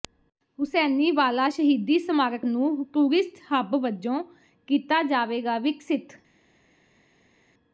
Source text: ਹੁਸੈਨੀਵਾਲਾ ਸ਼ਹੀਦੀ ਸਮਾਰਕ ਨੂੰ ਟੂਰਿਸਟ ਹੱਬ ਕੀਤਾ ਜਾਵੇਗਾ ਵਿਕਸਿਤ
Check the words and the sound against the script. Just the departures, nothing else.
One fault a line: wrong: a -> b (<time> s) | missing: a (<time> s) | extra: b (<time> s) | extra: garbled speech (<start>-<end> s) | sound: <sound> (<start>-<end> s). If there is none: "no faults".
extra: ਵਜੋਂ (3.8 s)